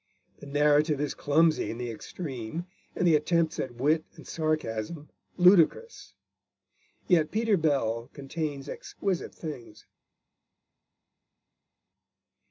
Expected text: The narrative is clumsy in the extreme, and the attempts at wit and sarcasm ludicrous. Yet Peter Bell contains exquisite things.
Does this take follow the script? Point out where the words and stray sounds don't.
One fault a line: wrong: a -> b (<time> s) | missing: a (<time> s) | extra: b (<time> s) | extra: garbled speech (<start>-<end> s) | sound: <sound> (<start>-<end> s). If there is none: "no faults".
no faults